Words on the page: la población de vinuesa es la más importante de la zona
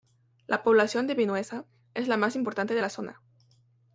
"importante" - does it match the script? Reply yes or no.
yes